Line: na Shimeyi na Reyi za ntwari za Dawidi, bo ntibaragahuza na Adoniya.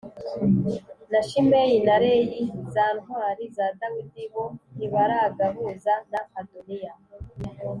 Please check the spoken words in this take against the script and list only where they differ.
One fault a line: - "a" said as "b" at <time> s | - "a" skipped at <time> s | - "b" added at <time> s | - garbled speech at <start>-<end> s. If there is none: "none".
none